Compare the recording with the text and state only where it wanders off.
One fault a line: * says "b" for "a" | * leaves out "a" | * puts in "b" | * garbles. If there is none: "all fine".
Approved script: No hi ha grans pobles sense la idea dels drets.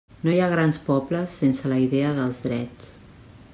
all fine